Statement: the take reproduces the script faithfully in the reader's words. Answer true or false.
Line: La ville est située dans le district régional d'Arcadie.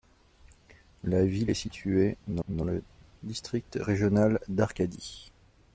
false